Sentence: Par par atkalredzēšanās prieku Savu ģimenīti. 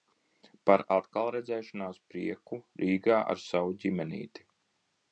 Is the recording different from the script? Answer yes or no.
yes